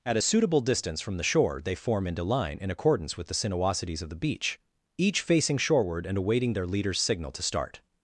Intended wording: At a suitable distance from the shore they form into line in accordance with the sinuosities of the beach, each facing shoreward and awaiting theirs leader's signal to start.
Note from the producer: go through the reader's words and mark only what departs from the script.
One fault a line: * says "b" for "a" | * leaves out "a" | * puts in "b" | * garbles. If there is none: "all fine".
* says "their" for "theirs"